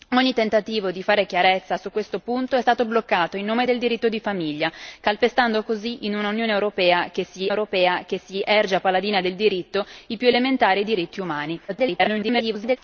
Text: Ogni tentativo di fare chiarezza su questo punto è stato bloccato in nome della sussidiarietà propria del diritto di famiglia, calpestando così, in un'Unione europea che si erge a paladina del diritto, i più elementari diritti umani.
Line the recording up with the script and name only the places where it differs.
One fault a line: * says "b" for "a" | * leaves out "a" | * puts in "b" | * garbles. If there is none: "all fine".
* leaves out "della sussidiarietà propria"
* puts in "europea che si"
* garbles